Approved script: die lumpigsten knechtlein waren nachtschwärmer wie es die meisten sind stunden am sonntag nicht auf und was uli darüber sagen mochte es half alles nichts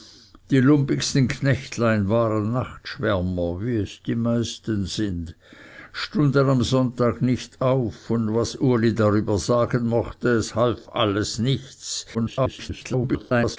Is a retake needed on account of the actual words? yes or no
yes